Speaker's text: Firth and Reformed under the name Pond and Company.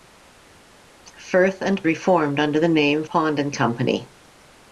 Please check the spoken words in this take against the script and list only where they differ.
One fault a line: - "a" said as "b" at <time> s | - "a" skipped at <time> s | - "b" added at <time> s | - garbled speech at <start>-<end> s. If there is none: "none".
none